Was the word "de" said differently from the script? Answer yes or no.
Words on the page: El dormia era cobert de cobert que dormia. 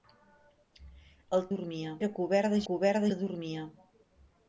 no